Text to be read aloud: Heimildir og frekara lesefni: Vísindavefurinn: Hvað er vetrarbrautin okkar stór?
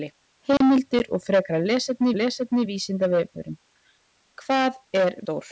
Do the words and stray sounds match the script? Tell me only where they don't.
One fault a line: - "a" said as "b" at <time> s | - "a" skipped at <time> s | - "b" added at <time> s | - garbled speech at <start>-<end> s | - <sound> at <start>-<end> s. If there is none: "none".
- dropout at 0.6-0.6 s
- "lesefni" added at 2.2 s
- "vetrarbrautin okkar" skipped at 5.2 s